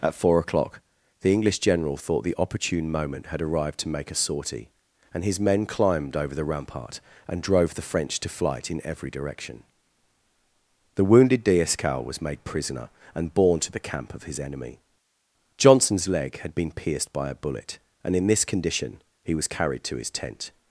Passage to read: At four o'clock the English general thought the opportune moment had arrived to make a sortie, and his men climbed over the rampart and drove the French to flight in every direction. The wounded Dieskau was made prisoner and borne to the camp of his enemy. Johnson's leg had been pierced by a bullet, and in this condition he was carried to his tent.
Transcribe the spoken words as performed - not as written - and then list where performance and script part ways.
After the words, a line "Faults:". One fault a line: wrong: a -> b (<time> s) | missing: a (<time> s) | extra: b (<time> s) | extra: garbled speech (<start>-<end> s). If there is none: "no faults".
At four o'clock the English general thought the opportune moment had arrived to make a sortie, and his men climbed over the rampart and drove the French to flight in every direction. The wounded Dieskau was made prisoner and borne to the camp of his enemy. Johnson's leg had been pierced by a bullet, and in this condition he was carried to his tent.
Faults:
no faults